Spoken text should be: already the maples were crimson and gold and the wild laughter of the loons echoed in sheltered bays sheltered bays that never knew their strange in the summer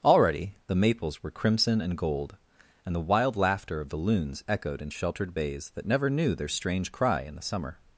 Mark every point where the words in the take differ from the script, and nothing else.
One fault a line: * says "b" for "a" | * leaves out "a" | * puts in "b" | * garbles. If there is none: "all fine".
* leaves out "sheltered bays"
* puts in "cry"